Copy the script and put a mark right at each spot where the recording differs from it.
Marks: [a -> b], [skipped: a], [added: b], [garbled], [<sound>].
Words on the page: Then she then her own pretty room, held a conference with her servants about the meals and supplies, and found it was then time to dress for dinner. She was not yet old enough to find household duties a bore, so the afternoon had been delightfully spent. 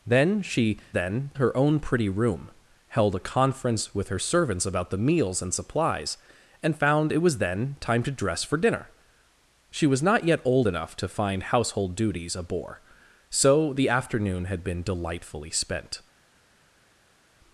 Then she then her own pretty room, held a conference with her servants about the meals and supplies, and found it was then time to dress for dinner. She was not yet old enough to find household duties a bore, so the afternoon had been delightfully spent.